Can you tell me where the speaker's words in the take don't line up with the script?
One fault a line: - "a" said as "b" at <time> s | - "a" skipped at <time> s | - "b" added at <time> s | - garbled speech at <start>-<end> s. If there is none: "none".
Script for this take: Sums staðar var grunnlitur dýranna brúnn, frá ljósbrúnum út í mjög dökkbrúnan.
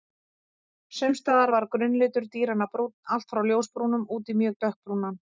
- "allt" added at 3.2 s